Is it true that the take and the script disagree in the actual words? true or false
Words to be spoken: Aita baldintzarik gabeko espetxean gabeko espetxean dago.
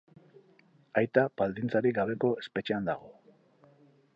true